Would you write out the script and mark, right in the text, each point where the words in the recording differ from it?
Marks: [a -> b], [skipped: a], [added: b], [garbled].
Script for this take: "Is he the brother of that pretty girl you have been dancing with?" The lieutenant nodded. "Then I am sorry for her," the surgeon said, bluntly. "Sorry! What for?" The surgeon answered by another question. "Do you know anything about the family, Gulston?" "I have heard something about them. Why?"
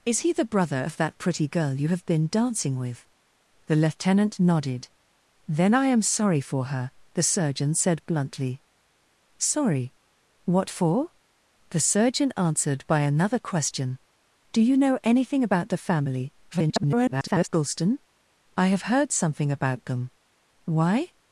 "Is he the brother of that pretty girl you have been dancing with?" The lieutenant nodded. "Then I am sorry for her," the surgeon said, bluntly. "Sorry! What for?" The surgeon answered by another question. "Do you know anything about the family, [garbled] Gulston?" "I have heard something about them. Why?"